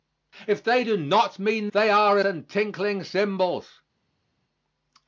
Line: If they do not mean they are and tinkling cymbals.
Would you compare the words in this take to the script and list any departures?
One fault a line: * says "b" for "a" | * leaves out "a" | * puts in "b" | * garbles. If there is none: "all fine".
all fine